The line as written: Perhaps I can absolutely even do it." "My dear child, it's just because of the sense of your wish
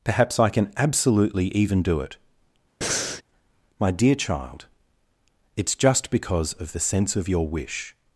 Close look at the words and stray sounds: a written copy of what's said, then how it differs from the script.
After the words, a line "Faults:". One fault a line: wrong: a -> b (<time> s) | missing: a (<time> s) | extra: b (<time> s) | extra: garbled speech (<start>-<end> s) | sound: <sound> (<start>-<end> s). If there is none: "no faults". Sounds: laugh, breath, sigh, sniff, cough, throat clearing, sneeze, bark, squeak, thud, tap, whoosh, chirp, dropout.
Perhaps I can absolutely even do it." "My dear child, it's just because of the sense of your wish
Faults:
sound: breath (2.8-3.2 s)